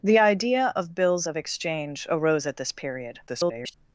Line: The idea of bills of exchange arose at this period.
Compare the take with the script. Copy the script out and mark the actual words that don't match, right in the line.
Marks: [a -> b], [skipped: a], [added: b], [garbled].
The idea of bills of exchange arose at this period. [garbled]